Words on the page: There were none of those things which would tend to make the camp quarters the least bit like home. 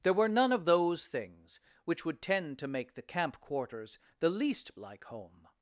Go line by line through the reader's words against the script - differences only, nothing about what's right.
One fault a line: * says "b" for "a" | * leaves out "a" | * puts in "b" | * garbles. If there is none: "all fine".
* leaves out "bit"